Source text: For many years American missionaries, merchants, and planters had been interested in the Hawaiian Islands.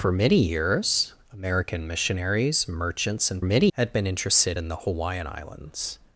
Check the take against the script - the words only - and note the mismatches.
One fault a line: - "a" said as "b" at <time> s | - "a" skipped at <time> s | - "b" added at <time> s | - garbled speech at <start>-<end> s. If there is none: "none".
- "planters" said as "many" at 3.4 s